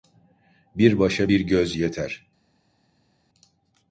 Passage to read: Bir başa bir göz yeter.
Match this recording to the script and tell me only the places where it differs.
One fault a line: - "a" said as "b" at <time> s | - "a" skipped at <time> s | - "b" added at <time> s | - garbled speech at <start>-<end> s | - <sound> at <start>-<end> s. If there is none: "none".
none